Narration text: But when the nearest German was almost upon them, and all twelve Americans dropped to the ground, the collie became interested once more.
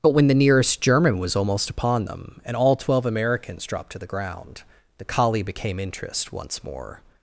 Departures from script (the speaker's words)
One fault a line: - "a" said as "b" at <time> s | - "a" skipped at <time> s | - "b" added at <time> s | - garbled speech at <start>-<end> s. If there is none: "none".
- "interested" said as "interest" at 5.8 s